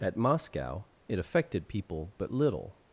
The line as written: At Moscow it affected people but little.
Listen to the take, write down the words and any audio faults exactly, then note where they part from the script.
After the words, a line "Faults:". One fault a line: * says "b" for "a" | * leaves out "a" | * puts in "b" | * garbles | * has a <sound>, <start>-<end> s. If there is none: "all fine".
At Moscow it affected people but little.
Faults:
all fine